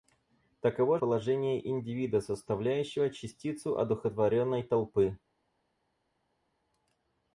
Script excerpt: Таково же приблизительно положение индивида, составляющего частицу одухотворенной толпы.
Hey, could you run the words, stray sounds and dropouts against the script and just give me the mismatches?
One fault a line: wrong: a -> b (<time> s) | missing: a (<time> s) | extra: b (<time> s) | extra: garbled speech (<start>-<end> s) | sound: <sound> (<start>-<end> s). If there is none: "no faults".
missing: же приблизительно (1.0 s)